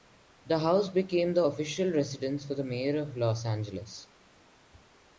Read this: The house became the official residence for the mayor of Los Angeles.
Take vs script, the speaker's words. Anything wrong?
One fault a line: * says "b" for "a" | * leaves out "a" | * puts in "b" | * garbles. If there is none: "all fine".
all fine